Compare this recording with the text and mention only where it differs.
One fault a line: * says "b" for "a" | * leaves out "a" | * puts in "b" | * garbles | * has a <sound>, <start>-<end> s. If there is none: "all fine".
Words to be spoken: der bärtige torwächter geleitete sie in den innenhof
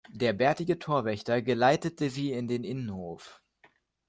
all fine